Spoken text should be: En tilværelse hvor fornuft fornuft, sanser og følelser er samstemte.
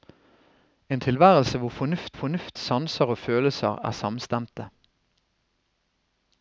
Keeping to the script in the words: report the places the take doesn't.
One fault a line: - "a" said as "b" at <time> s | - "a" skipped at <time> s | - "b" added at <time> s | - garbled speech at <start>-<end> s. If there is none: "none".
none